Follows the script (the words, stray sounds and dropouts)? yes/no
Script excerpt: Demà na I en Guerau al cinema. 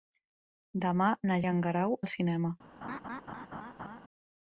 no